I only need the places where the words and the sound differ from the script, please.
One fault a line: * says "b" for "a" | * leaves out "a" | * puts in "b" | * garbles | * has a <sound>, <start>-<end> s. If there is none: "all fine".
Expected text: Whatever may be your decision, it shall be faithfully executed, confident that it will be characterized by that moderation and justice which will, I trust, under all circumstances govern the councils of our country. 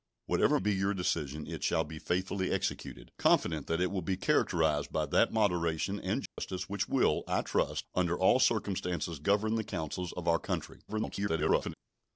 * leaves out "may"
* has a dropout, 6.3-6.4 s
* garbles